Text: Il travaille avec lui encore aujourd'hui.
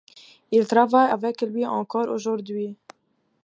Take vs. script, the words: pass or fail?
pass